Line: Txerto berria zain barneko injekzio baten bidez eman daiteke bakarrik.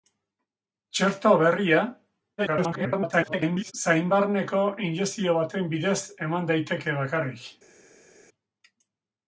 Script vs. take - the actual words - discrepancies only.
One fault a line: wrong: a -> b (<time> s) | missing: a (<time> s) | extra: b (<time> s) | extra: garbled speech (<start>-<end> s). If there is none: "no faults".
extra: garbled speech (2.4-3.7 s)